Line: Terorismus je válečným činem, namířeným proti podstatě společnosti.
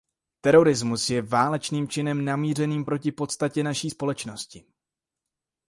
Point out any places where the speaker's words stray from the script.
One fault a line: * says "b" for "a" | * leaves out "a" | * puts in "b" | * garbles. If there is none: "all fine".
* puts in "naší"